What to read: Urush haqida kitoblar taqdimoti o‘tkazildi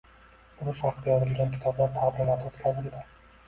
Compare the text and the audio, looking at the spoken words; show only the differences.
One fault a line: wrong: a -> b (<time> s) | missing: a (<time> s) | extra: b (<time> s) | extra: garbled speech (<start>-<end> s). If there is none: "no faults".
extra: yozilgan (1.2 s)